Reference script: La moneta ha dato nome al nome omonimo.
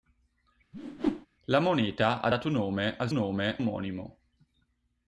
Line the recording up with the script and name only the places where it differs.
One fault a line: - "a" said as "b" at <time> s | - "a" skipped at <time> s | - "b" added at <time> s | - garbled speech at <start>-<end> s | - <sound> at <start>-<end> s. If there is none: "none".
- whoosh at 0.7-1.3 s